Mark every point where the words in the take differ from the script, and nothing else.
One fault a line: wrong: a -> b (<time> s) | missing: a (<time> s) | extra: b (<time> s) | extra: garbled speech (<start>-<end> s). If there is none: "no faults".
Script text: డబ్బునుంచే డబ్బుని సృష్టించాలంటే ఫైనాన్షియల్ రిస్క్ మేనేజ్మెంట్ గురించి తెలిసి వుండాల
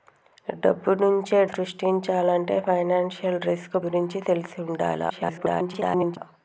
missing: డబ్బుని (1.4 s)
missing: మేనేజ్మెంట్ (3.8 s)
extra: garbled speech (5.1-6.2 s)